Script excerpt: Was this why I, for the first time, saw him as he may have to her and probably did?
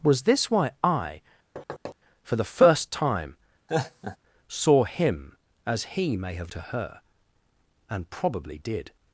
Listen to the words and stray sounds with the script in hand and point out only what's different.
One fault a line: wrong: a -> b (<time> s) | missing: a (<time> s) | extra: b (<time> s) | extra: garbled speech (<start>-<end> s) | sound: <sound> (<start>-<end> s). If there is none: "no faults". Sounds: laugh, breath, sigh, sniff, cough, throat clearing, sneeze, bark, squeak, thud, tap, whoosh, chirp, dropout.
sound: thud (1.6-2.0 s)
sound: laugh (3.7-4.2 s)